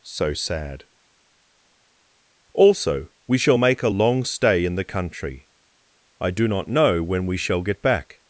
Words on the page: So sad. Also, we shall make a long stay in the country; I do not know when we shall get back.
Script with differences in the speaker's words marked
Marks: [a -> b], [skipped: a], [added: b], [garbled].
So sad. Also, we shall make a long stay in the country; I do not know when we shall get back.